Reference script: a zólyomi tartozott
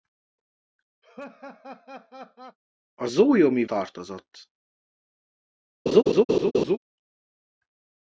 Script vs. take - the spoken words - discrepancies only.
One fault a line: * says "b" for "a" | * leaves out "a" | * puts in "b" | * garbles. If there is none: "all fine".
all fine